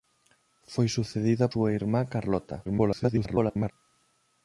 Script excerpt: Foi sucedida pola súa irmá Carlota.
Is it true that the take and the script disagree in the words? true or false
true